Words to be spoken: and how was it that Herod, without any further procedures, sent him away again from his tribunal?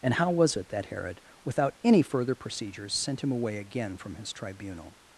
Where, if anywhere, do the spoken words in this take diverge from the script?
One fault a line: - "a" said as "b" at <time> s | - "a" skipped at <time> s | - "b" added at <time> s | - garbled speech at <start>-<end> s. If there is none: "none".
none